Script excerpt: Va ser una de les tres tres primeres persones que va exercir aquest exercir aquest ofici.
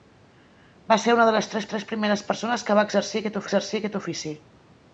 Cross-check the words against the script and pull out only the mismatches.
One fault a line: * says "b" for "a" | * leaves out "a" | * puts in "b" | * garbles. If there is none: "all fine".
all fine